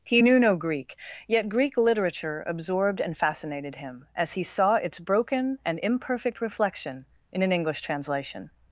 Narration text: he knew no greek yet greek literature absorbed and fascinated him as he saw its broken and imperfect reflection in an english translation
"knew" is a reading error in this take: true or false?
false